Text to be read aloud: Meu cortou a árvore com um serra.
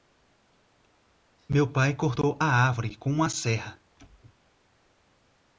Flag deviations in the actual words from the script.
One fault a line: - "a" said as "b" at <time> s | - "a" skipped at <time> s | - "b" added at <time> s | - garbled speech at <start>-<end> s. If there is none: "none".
- "pai" added at 1.7 s
- "um" said as "uma" at 3.1 s